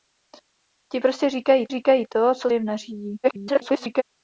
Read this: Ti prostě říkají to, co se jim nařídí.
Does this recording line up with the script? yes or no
no